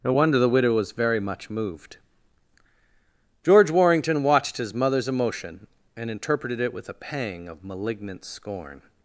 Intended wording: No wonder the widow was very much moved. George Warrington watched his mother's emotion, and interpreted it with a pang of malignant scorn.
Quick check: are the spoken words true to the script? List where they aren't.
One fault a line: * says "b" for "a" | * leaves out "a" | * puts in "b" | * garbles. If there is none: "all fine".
all fine